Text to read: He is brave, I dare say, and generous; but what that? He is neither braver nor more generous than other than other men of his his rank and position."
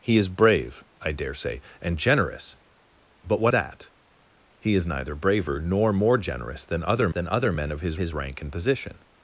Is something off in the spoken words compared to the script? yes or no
no